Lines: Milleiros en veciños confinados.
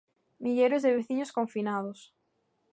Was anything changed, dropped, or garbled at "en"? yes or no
yes